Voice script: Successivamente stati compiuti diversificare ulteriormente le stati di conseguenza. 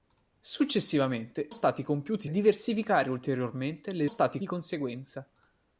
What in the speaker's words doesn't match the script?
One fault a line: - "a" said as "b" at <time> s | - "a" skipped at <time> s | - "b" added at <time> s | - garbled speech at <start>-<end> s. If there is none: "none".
none